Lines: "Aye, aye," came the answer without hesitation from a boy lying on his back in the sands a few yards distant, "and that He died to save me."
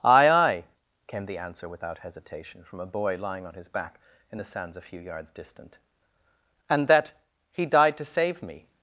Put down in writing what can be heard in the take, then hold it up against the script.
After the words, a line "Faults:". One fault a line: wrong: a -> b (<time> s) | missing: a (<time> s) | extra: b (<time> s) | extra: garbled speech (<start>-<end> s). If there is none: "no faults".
"Aye, aye," came the answer without hesitation from a boy lying on his back in the sands a few yards distant, "and that He died to save me."
Faults:
no faults